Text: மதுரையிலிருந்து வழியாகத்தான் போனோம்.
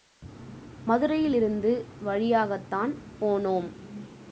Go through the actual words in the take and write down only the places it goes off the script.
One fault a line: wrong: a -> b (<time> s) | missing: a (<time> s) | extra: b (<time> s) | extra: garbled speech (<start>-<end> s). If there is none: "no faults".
no faults